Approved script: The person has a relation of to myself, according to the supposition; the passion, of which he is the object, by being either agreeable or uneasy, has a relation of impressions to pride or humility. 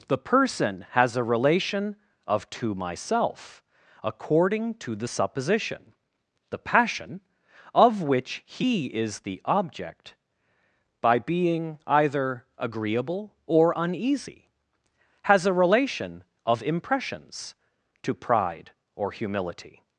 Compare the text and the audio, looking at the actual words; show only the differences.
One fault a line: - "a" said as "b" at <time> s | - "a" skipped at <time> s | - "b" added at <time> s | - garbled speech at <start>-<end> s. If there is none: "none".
none